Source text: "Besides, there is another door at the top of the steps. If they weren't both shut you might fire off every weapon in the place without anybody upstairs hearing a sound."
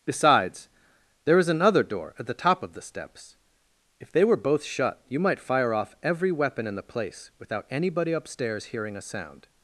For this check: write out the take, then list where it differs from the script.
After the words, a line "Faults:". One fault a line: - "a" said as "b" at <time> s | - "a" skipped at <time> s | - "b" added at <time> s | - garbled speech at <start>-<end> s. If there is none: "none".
"Besides, there is another door at the top of the steps. If they were both shut you might fire off every weapon in the place without anybody upstairs hearing a sound."
Faults:
- "weren't" said as "were" at 4.2 s